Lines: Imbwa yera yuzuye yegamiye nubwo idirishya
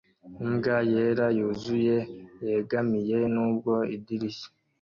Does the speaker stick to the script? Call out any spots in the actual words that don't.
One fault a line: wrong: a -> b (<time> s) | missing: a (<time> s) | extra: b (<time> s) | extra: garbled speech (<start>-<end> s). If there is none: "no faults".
no faults